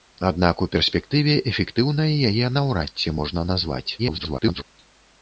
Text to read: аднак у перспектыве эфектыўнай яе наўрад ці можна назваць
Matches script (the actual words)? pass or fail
fail